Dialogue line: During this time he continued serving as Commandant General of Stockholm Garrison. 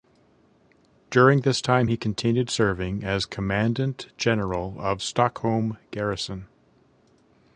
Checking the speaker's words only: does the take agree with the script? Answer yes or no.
yes